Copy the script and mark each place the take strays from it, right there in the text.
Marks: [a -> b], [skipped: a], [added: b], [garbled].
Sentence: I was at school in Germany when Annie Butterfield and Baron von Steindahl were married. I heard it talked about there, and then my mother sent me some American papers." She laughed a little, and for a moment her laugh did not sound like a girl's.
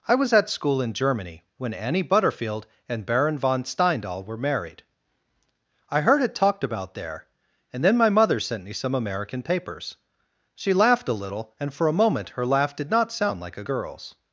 I was at school in Germany when Annie Butterfield and Baron von Steindahl were married. I heard it talked about there, and then my mother sent me some American papers." She laughed a little, and for a moment her laugh did not sound like a girl's.